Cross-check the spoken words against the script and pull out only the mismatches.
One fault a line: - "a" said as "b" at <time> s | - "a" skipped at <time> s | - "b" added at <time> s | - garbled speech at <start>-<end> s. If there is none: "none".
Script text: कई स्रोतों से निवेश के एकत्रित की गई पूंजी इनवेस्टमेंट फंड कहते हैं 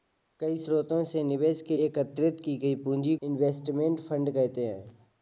none